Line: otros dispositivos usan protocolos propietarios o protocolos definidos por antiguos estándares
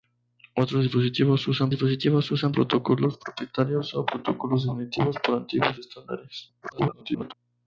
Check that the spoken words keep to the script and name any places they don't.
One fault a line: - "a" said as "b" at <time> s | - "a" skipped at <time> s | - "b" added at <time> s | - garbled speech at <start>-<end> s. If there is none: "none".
- "dispositivos usan" added at 1.7 s
- garbled speech at 6.6-7.3 s